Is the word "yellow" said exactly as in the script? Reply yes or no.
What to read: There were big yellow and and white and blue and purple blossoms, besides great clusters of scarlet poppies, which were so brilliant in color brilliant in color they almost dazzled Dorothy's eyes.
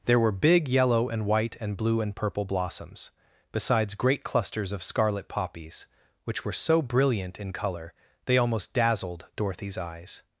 yes